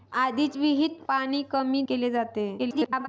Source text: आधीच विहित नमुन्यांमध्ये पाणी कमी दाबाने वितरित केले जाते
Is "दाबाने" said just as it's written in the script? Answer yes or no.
no